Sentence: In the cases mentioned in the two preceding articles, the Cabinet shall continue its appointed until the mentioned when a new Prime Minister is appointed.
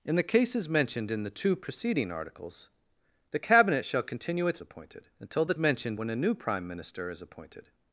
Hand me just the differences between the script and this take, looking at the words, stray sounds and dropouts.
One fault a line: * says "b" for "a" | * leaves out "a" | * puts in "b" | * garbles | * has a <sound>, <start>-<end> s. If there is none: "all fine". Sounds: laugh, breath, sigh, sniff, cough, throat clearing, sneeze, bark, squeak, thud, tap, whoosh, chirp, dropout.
all fine